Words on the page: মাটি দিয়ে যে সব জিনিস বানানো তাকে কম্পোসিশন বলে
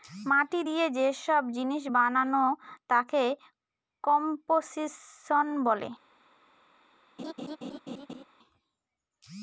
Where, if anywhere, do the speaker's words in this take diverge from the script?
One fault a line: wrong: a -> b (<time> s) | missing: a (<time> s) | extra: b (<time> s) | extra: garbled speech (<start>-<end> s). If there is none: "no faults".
no faults